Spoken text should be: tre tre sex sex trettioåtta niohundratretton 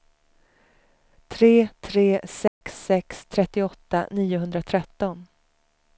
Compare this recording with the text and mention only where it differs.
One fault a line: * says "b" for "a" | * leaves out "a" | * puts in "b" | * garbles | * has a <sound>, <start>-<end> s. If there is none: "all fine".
* has a dropout, 2.5-2.6 s